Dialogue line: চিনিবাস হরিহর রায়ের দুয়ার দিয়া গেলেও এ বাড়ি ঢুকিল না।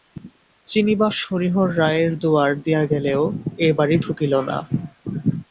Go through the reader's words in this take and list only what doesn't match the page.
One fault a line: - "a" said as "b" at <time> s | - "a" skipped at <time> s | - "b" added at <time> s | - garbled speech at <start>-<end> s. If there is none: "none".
none